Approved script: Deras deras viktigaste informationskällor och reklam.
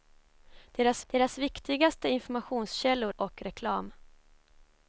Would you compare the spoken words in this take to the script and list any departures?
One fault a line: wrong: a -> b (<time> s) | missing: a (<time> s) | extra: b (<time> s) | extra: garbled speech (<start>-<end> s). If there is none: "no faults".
no faults